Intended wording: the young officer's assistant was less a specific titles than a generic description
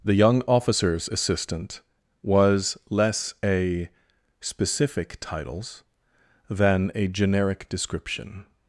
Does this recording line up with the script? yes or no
yes